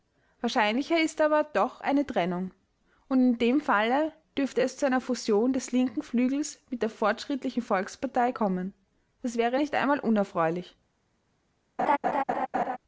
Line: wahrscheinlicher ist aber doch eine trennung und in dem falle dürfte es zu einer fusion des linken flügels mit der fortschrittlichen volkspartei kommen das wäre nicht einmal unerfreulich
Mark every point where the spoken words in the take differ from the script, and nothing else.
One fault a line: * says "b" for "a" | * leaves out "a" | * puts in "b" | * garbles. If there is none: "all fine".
all fine